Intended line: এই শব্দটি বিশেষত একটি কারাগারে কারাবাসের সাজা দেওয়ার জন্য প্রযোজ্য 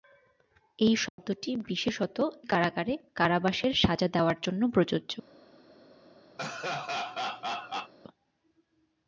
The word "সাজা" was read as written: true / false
true